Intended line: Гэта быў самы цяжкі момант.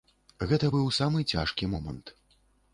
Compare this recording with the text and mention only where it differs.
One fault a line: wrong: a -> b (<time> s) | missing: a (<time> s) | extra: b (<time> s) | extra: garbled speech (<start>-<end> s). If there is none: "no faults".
no faults